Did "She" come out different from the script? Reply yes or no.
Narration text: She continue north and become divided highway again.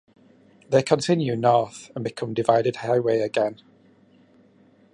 yes